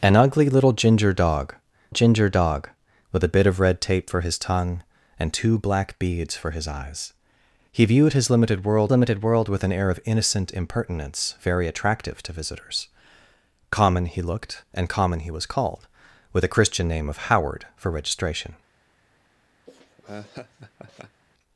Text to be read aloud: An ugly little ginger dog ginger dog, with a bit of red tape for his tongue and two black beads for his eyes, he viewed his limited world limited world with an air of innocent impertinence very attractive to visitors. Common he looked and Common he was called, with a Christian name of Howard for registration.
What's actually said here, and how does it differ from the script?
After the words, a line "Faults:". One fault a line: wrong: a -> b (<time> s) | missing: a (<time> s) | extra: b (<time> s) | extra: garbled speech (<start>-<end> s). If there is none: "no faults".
An ugly little ginger dog ginger dog, with a bit of red tape for his tongue and two black beads for his eyes, he viewed his limited world limited world with an air of innocent impertinence very attractive to visitors. Common he looked and Common he was called, with a Christian name of Howard for registration.
Faults:
no faults